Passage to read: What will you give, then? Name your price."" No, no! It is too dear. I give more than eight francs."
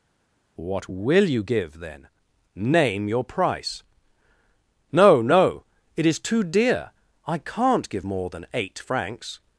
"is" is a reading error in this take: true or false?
false